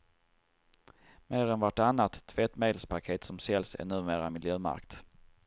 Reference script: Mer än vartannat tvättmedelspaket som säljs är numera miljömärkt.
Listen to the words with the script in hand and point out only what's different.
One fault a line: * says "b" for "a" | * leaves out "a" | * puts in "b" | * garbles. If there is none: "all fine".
all fine